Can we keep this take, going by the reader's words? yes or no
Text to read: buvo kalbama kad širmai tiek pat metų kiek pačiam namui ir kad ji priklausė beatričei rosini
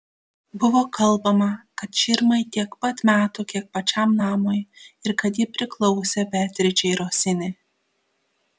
yes